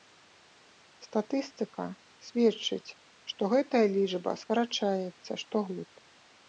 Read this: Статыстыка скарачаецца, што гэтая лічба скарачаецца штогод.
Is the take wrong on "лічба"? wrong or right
right